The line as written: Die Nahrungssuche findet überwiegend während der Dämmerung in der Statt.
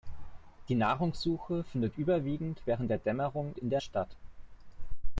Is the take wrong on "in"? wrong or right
right